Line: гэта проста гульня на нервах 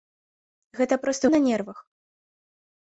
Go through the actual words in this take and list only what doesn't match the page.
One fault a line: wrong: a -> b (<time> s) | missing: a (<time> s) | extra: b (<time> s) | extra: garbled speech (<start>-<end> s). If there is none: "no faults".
missing: гульня (1.2 s)